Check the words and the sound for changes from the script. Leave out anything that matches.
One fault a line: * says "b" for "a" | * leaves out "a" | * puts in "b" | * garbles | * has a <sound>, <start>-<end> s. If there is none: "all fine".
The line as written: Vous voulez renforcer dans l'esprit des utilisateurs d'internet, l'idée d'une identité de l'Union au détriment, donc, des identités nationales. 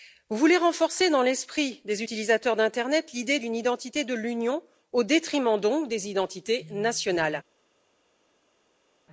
all fine